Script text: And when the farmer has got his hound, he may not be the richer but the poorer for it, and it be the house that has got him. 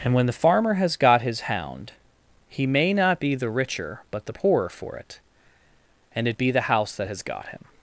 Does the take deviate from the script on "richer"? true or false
false